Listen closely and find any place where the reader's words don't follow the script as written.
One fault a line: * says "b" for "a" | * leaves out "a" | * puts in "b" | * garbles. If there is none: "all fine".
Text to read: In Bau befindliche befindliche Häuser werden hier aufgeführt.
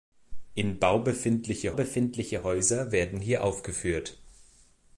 all fine